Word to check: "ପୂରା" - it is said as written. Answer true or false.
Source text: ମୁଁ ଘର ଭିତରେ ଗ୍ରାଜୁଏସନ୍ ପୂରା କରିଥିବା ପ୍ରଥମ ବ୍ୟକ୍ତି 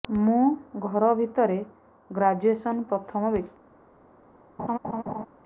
false